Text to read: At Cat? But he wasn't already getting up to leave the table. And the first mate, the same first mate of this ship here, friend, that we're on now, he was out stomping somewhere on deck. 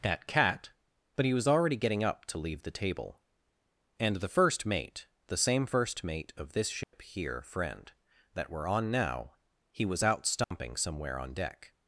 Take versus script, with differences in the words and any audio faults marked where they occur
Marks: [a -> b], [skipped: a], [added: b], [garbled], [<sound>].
At Cat? But he [wasn't -> was] already getting up to leave the table. And the first mate, the same first mate of this ship [dropout] here, friend, that we're on now, he was out stomping [dropout] somewhere on deck.